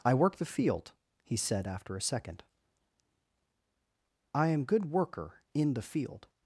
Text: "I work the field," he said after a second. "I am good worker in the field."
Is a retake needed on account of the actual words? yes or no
no